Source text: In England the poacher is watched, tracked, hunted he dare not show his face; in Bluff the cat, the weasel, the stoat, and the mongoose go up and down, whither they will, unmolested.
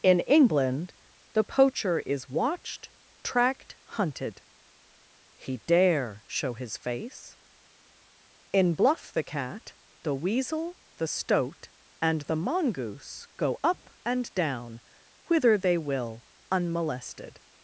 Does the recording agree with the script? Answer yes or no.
no